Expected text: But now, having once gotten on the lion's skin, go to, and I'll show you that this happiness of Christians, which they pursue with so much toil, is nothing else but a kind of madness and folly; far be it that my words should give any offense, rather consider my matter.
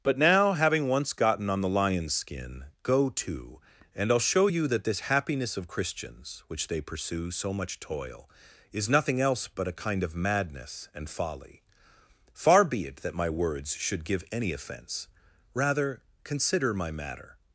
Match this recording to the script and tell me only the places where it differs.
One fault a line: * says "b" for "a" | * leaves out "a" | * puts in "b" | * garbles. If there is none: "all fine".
* leaves out "with"